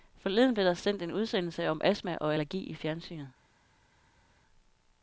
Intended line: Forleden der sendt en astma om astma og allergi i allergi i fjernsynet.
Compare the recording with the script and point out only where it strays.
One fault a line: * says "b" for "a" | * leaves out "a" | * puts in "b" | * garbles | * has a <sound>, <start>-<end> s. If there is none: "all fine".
* puts in "blev"
* says "udsendelse" for "astma"
* leaves out "allergi i"